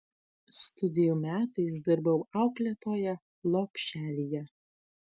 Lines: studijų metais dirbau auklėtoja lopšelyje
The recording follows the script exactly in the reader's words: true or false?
true